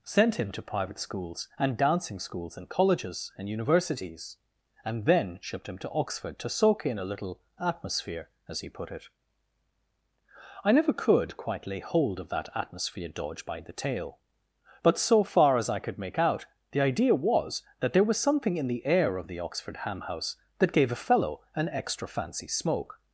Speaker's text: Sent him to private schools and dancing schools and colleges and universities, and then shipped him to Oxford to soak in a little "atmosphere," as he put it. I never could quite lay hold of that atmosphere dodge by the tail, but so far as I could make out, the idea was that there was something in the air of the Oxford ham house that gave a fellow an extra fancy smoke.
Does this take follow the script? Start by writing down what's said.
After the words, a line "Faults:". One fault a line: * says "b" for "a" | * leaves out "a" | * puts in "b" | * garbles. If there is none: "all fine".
Sent him to private schools and dancing schools and colleges and universities, and then shipped him to Oxford to soak in a little "atmosphere," as he put it. I never could quite lay hold of that atmosphere dodge by the tail, but so far as I could make out, the idea was that there was something in the air of the Oxford ham house that gave a fellow an extra fancy smoke.
Faults:
all fine